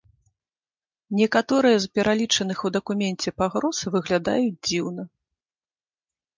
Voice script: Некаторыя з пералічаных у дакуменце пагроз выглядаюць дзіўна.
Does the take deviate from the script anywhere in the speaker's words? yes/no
no